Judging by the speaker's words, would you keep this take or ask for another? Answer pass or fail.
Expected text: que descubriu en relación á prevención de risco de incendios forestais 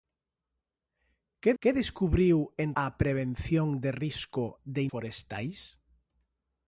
fail